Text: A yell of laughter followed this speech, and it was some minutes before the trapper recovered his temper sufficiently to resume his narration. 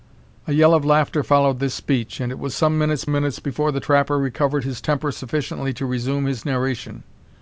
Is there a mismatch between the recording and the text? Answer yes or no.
yes